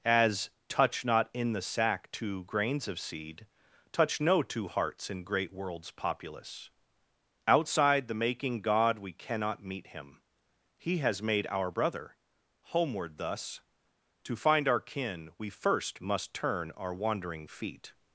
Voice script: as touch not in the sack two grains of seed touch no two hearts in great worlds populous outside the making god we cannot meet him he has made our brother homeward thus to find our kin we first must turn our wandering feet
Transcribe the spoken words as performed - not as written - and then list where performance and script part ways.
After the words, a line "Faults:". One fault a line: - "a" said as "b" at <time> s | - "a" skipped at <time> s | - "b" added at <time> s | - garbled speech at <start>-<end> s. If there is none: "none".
as touch not in the sack two grains of seed touch no two hearts in great worlds populous outside the making god we cannot meet him he has made our brother homeward thus to find our kin we first must turn our wandering feet
Faults:
none